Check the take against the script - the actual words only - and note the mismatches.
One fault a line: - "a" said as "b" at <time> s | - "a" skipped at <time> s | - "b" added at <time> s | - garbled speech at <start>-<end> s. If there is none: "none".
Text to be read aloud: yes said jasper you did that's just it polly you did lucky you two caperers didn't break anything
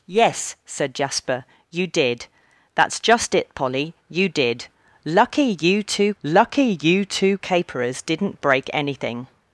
- "lucky you two" added at 6.2 s